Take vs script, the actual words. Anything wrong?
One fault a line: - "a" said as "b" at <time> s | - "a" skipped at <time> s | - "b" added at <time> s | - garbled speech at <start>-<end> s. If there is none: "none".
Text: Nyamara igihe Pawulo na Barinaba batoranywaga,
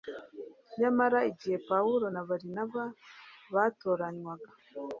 none